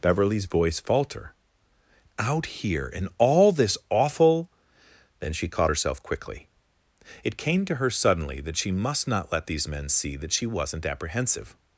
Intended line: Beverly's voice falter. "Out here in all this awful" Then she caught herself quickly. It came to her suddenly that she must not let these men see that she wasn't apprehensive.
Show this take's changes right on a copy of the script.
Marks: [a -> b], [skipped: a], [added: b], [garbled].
Beverly's voice falter. "Out here in all this awful" Then she caught herself quickly. It came to her suddenly that she must not let these men see that she wasn't apprehensive.